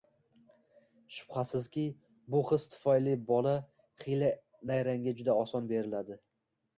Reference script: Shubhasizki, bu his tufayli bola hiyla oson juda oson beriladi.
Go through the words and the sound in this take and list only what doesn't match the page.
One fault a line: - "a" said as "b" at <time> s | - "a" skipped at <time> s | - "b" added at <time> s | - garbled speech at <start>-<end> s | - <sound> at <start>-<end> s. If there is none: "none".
- "oson" said as "nayrangga" at 4.7 s